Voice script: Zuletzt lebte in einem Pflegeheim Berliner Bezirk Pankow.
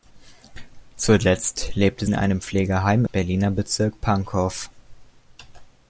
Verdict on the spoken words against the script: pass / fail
pass